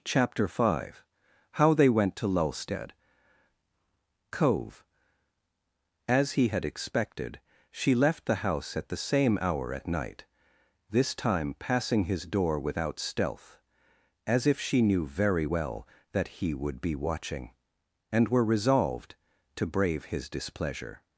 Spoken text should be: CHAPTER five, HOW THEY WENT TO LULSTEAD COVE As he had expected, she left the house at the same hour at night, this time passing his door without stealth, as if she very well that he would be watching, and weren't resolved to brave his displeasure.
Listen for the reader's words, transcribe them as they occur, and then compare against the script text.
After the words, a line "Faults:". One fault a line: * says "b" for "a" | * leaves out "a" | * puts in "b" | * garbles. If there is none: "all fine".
CHAPTER five, HOW THEY WENT TO LULSTEAD COVE As he had expected, she left the house at the same hour at night, this time passing his door without stealth, as if she knew very well that he would be watching, and were resolved to brave his displeasure.
Faults:
* puts in "knew"
* says "were" for "weren't"